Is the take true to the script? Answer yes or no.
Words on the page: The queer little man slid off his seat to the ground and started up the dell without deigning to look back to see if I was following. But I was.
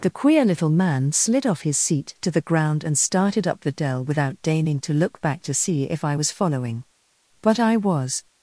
yes